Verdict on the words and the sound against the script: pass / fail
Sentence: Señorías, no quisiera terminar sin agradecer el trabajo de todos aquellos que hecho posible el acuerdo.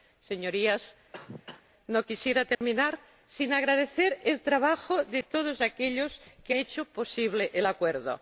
fail